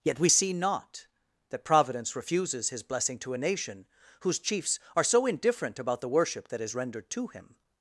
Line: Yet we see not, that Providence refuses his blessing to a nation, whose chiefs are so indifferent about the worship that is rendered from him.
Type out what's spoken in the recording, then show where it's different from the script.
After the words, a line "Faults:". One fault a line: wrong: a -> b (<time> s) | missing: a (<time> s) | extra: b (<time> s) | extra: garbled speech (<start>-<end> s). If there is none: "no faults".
Yet we see not, that Providence refuses his blessing to a nation, whose chiefs are so indifferent about the worship that is rendered to him.
Faults:
wrong: from -> to (7.1 s)